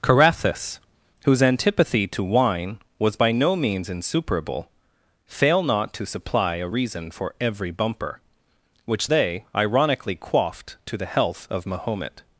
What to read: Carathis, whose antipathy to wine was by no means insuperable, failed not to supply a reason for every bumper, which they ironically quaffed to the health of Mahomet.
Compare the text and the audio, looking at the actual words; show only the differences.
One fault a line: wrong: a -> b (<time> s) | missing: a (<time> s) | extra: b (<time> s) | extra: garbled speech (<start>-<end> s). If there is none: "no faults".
wrong: failed -> fail (5.3 s)